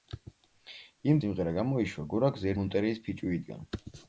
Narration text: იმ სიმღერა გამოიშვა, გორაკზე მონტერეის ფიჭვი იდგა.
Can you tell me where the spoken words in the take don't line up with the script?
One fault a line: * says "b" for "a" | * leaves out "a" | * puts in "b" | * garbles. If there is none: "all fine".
all fine